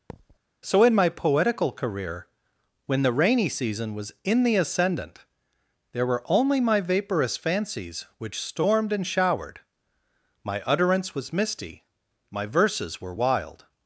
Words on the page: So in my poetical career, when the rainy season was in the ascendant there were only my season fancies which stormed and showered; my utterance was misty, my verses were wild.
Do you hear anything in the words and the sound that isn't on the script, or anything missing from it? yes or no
yes